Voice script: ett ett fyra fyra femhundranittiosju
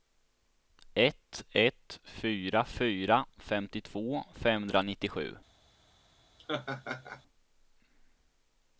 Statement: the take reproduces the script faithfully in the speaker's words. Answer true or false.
false